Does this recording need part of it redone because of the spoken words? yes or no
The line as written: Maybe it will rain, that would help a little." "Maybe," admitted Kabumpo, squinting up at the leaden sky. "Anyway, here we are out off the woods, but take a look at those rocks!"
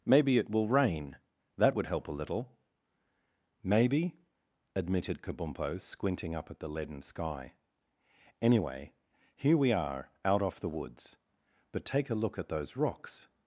no